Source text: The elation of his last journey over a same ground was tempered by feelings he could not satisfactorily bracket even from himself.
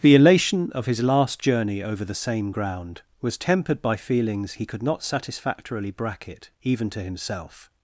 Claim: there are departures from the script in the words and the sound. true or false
true